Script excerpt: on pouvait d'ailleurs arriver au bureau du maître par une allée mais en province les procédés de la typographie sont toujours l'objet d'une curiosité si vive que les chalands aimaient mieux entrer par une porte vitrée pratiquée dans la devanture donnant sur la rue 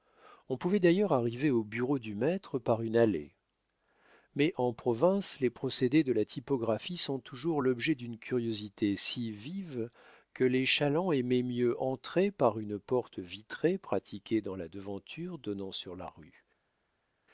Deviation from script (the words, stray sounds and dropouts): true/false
false